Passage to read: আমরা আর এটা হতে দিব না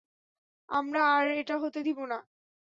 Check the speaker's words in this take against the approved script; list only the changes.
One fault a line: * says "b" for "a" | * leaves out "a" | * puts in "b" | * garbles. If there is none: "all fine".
all fine